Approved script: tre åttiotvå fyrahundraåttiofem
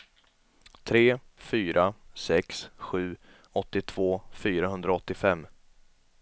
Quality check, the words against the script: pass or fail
fail